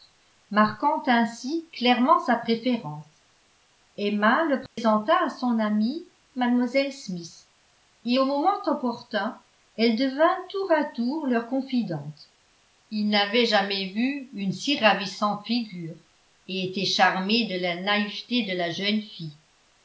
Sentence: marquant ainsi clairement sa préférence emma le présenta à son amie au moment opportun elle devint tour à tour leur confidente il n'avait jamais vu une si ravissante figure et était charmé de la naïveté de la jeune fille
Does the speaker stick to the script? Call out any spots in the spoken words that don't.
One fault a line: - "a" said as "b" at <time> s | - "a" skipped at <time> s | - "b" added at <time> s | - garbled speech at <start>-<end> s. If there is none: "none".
- "mlle smith et" added at 6.3 s